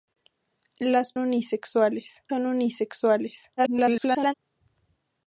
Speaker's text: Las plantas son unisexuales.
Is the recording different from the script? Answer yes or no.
yes